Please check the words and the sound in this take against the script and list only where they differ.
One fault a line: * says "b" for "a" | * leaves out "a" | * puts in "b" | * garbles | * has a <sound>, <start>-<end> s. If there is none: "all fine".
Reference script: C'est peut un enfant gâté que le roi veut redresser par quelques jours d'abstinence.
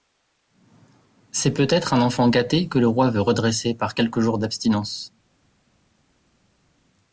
* puts in "être"